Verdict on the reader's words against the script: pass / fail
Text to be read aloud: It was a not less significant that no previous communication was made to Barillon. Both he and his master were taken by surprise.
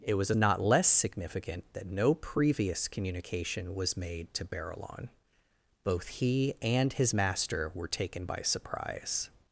pass